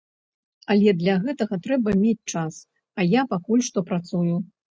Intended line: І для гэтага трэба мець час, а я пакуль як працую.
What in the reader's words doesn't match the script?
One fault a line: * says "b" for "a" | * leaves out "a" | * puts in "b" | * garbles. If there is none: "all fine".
* says "Але" for "І"
* says "што" for "як"